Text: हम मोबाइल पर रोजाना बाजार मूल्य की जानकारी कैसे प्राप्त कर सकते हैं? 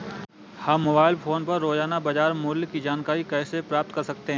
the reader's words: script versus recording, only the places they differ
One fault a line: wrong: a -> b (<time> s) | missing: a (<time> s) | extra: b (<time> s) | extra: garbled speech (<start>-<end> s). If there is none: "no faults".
extra: फोन (1.1 s)